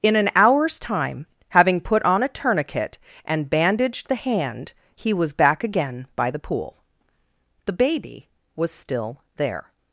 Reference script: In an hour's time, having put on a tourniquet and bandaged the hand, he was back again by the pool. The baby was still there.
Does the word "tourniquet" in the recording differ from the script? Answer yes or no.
no